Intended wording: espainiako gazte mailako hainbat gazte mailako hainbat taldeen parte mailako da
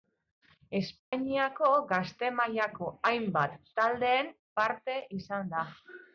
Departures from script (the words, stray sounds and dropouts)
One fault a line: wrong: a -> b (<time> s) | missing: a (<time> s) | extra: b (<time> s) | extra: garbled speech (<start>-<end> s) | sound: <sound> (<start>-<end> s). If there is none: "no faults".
sound: dropout (1.0-1.1 s)
missing: gazte mailako hainbat (3.5 s)
wrong: mailako -> izan (5.2 s)